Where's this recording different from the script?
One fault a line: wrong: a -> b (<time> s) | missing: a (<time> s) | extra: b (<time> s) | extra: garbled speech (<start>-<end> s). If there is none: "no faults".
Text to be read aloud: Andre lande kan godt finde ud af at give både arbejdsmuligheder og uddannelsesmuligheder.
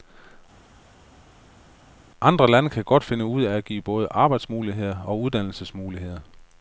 no faults